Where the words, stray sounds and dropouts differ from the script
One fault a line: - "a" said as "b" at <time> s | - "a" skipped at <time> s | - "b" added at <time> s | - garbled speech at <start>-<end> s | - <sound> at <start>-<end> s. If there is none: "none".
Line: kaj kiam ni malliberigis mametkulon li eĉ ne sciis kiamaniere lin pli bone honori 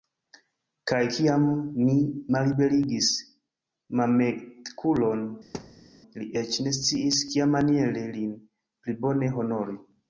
- thud at 5.5-5.9 s